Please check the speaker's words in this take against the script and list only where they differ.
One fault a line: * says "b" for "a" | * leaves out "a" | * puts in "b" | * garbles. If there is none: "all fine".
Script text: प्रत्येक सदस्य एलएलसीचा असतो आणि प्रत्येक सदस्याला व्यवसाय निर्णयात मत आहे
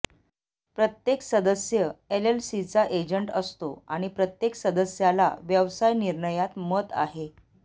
* puts in "एजंट"